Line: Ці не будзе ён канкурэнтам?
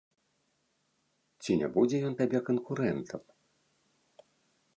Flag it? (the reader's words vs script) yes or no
yes